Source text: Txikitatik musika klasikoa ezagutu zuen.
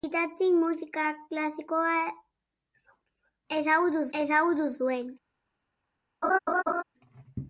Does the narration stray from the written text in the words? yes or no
yes